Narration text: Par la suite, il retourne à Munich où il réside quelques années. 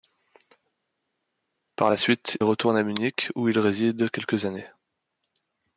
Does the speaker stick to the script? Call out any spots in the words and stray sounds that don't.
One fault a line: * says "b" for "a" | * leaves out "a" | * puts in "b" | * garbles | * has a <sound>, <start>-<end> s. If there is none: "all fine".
* leaves out "il"